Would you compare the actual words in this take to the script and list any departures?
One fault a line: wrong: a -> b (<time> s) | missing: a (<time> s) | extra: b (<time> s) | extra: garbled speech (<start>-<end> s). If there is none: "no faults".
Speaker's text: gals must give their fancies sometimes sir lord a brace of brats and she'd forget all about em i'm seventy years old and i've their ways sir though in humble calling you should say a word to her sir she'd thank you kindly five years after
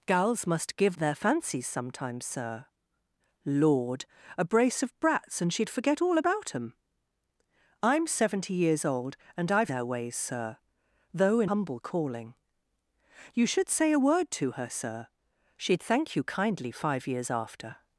no faults